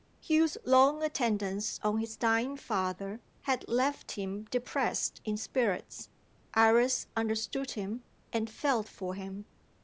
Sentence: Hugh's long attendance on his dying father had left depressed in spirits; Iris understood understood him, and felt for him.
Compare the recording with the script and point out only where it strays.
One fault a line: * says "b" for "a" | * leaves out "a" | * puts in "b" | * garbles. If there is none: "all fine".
* puts in "him"
* leaves out "understood"